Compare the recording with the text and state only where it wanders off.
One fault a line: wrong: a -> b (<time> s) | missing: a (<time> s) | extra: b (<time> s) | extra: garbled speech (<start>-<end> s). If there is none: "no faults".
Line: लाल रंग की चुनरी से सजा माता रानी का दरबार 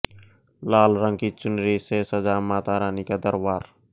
no faults